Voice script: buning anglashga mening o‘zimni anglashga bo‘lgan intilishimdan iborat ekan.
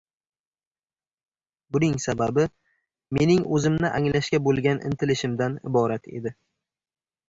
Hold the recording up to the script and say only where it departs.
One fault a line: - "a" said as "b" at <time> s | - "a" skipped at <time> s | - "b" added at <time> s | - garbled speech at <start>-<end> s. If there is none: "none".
- "anglashga" said as "sababi" at 2.1 s
- "ekan" said as "edi" at 6.2 s